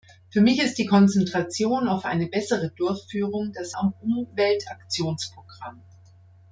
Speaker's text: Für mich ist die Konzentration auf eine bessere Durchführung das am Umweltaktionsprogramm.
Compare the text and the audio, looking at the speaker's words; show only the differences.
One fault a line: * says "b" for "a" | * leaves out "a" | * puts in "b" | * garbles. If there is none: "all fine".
all fine